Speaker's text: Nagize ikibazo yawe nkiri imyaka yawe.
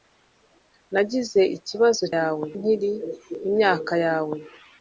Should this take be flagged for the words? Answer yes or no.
no